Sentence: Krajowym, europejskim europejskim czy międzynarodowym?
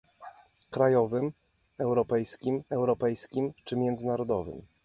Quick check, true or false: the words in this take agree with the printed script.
true